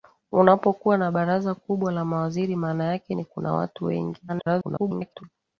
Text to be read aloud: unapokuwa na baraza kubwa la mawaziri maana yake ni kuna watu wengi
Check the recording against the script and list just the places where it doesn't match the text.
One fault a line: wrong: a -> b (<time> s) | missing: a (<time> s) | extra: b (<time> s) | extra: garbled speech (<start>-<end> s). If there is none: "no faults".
extra: garbled speech (4.3-5.2 s)